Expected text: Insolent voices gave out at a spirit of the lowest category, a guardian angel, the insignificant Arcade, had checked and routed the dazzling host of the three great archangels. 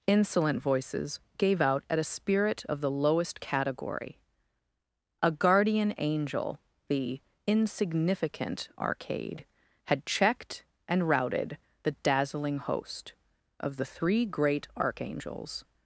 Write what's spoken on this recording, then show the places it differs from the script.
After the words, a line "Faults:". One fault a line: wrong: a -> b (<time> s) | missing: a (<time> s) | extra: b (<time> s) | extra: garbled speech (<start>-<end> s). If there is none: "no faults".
Insolent voices gave out at a spirit of the lowest category, a guardian angel, the insignificant Arcade, had checked and routed the dazzling host of the three great archangels.
Faults:
no faults